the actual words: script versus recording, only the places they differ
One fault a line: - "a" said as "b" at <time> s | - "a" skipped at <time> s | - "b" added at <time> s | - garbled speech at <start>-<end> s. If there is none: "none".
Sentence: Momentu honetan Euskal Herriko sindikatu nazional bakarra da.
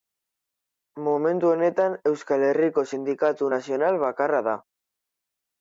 none